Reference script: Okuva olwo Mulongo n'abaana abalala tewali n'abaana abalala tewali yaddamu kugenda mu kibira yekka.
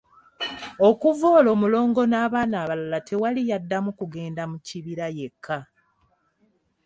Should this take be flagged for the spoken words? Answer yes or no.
yes